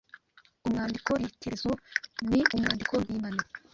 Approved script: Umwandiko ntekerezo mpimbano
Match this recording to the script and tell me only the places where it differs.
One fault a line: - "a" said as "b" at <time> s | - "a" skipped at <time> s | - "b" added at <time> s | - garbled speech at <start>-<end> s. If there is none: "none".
- "ni umwandiko" added at 2.3 s